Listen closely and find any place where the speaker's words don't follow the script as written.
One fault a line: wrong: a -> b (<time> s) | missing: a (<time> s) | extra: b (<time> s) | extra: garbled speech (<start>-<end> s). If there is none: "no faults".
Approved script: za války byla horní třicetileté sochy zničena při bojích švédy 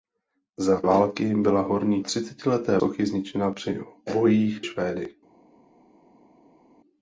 no faults